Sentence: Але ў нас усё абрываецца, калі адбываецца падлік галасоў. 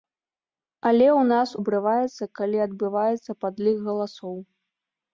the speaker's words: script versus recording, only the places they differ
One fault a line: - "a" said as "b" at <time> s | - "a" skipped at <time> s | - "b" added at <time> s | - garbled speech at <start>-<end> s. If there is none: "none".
- "усё" skipped at 1.5 s